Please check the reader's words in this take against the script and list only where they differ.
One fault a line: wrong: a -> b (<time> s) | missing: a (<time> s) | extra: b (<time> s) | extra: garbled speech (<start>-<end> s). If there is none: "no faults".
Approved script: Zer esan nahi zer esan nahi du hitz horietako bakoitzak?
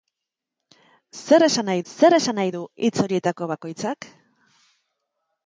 no faults